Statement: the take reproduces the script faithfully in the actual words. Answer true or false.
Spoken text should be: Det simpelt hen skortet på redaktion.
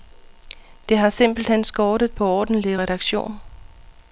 false